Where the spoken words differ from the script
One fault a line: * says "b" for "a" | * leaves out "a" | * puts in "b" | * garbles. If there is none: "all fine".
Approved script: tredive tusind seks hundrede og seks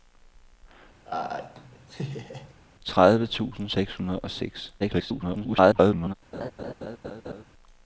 * garbles